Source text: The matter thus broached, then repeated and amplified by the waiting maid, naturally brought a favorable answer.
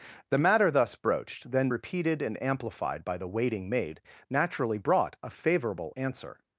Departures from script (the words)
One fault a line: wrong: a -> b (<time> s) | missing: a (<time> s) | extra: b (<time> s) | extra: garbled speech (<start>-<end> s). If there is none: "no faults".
no faults